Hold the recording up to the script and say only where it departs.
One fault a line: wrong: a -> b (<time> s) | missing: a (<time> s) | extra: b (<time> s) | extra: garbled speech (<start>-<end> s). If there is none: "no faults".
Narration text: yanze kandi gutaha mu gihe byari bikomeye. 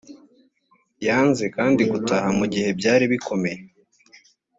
no faults